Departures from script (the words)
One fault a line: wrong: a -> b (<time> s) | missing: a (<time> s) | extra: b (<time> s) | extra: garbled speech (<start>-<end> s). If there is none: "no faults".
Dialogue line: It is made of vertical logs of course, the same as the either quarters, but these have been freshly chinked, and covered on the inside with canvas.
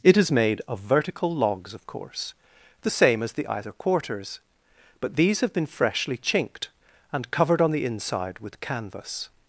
no faults